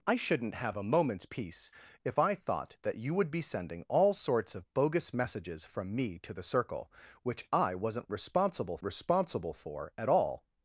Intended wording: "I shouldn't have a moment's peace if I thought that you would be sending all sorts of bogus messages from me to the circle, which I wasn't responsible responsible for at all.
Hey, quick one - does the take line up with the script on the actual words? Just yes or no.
yes